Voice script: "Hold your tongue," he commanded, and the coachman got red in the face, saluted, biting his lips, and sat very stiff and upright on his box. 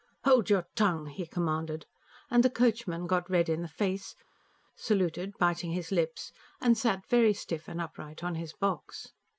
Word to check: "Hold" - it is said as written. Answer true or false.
true